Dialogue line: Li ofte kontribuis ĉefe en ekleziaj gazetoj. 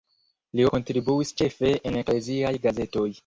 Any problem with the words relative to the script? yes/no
yes